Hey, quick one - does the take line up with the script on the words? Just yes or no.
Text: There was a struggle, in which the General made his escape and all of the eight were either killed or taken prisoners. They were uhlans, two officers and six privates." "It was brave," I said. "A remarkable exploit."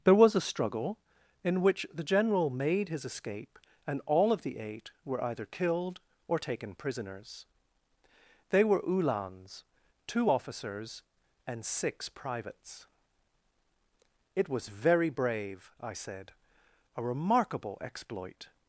no